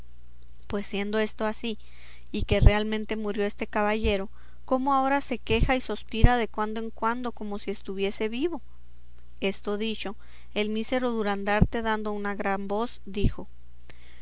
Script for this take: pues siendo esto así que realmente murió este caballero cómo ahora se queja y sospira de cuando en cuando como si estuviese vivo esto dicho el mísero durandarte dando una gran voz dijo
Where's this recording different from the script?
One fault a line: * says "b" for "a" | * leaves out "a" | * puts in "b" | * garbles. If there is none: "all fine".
* puts in "y"